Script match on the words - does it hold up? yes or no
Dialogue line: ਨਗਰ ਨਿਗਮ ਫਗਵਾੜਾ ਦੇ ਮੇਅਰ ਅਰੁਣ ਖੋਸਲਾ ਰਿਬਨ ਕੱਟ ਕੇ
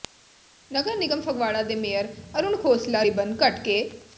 yes